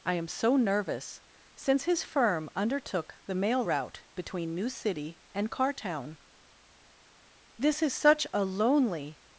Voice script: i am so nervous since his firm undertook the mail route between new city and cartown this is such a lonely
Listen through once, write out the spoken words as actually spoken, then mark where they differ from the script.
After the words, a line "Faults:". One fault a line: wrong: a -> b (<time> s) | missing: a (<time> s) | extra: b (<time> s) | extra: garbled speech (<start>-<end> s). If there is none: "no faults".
i am so nervous since his firm undertook the mail route between new city and cartown this is such a lonely
Faults:
no faults